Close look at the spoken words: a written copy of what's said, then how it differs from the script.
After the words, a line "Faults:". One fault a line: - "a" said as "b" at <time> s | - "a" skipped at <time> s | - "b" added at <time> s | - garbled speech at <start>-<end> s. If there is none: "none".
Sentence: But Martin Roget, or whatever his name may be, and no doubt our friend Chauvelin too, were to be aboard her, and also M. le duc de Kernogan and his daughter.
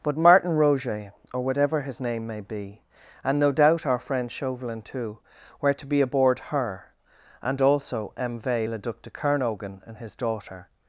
But Martin Roget, or whatever his name may be, and no doubt our friend Chauvelin too, were to be aboard her, and also M. v le duc de Kernogan and his daughter.
Faults:
- "v" added at 8.4 s